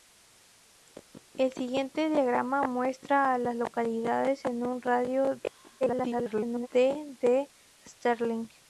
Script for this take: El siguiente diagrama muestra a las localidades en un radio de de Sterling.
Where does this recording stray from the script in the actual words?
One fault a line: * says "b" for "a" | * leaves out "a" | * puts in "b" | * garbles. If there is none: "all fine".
* garbles